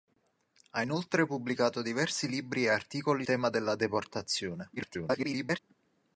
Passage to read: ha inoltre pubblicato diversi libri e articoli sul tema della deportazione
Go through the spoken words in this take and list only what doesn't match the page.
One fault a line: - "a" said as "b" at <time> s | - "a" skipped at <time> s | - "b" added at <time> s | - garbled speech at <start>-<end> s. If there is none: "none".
- "sul" skipped at 3.3 s
- garbled speech at 4.8-5.6 s